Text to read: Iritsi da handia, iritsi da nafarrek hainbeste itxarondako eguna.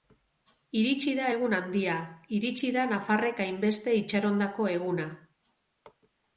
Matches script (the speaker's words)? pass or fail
fail